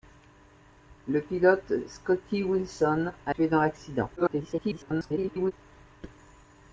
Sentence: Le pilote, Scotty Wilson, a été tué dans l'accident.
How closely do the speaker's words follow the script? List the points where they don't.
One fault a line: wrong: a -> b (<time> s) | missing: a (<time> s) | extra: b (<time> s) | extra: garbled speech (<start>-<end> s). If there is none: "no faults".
missing: été (3.4 s)
extra: garbled speech (4.2-5.5 s)